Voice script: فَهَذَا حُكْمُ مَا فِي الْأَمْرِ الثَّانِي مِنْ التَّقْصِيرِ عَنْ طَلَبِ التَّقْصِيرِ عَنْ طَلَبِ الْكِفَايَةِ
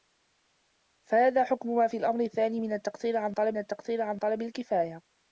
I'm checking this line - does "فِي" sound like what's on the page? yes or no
yes